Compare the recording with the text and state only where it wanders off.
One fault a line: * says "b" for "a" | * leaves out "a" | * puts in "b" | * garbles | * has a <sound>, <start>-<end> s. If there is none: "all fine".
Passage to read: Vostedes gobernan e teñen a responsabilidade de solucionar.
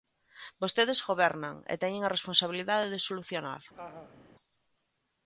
* has a laugh, 3.7-4.3 s